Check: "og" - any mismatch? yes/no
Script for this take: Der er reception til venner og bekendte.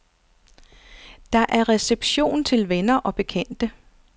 no